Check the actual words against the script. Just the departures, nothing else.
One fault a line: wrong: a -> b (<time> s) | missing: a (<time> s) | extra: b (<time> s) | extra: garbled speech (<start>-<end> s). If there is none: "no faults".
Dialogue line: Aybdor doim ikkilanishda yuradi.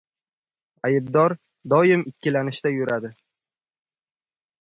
no faults